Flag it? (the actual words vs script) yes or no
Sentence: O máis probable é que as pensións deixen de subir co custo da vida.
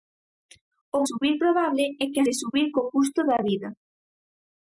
yes